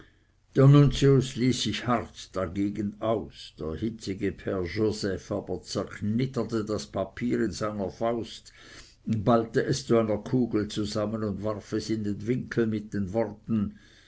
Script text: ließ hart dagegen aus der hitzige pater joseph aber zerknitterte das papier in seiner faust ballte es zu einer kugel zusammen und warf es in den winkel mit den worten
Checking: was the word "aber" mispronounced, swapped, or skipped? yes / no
no